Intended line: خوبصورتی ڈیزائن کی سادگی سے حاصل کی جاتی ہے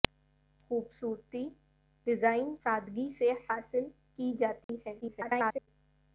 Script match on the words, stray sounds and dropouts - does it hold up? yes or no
no